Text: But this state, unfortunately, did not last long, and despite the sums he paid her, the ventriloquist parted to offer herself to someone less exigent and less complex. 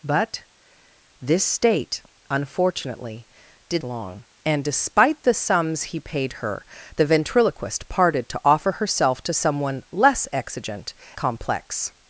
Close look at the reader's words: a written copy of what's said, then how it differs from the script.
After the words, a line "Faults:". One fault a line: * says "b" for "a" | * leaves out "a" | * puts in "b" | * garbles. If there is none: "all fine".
But this state, unfortunately, did long, and despite the sums he paid her, the ventriloquist parted to offer herself to someone less exigent complex.
Faults:
* leaves out "not last"
* leaves out "and less"